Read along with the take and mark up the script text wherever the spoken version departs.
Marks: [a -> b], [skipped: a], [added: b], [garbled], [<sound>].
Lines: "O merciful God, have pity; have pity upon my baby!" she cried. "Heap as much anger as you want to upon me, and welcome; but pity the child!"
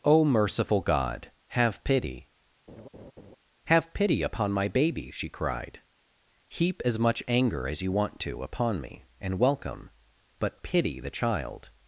"O merciful God, have pity; [laugh] have pity upon my baby!" she cried. "Heap as much anger as you want to upon me, and welcome; but pity the child!"